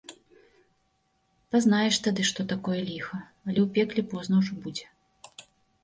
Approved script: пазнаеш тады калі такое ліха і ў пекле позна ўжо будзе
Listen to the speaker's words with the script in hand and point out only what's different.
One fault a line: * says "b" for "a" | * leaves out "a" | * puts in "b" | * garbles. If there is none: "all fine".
* says "што" for "калі"
* says "але" for "і"